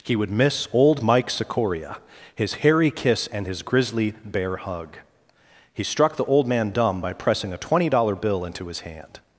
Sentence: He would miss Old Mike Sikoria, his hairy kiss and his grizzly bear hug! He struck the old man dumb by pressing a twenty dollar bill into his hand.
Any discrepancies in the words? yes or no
no